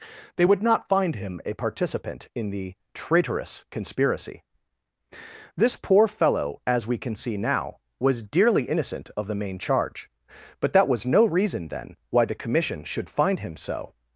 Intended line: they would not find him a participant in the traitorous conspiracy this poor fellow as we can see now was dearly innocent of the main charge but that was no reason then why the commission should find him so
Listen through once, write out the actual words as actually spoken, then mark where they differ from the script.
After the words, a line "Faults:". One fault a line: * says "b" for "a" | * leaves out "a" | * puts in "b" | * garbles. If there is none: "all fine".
they would not find him a participant in the traitorous conspiracy this poor fellow as we can see now was dearly innocent of the main charge but that was no reason then why the commission should find him so
Faults:
all fine